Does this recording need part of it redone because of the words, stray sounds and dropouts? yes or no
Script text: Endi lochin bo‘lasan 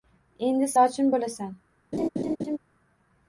yes